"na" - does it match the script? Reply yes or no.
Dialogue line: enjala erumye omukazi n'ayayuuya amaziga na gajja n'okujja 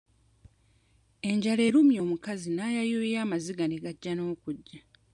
no